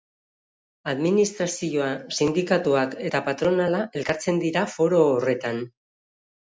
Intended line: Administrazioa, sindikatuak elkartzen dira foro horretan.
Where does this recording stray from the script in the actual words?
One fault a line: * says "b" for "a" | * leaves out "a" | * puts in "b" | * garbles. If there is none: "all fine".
* puts in "eta patronala"